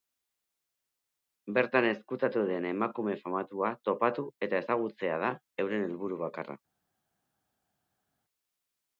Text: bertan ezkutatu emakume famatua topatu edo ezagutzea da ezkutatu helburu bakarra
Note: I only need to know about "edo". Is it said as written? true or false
false